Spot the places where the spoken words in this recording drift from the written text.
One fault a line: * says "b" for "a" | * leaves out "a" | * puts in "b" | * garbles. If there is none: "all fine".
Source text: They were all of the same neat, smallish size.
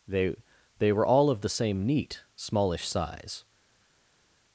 * puts in "they"